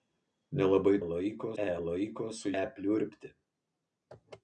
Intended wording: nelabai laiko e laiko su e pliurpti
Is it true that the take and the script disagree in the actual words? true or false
false